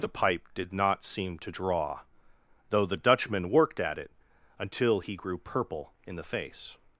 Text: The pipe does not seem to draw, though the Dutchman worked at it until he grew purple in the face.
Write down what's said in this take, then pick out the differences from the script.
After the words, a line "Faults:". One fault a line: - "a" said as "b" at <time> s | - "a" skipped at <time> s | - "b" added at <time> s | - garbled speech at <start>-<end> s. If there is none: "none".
The pipe did not seem to draw, though the Dutchman worked at it until he grew purple in the face.
Faults:
- "does" said as "did" at 0.6 s